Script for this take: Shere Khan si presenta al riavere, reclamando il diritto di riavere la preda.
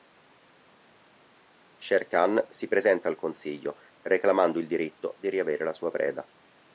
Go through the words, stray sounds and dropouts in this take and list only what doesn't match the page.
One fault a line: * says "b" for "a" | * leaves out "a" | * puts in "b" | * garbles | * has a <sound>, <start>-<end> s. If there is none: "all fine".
* says "consiglio" for "riavere"
* puts in "sua"